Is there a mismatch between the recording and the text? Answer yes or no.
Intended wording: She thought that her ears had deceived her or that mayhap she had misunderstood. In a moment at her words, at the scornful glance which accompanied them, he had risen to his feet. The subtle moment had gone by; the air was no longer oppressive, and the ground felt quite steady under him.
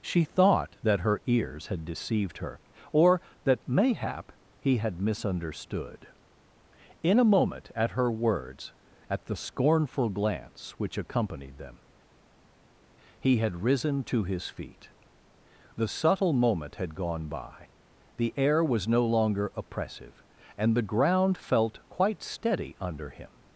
yes